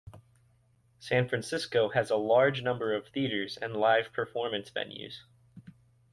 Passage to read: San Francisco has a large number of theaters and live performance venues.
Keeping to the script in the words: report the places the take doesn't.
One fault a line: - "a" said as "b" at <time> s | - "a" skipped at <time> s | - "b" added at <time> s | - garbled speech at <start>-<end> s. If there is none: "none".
none